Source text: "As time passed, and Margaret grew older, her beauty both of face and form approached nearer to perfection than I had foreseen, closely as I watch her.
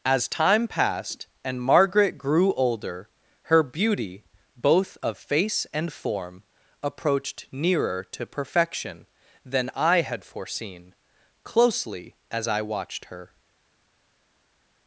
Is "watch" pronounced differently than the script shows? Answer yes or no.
yes